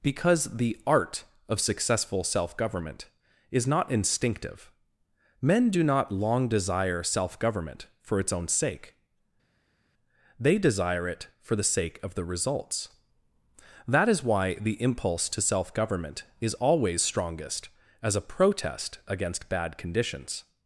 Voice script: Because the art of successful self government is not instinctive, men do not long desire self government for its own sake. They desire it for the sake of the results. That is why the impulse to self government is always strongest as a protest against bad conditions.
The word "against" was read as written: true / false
true